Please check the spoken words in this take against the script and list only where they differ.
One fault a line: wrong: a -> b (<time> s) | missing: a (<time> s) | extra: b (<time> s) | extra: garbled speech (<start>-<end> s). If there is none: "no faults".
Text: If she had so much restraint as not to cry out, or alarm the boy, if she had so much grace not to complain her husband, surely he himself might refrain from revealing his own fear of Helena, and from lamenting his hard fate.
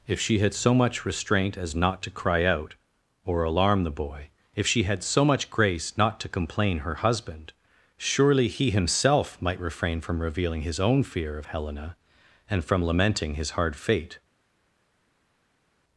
no faults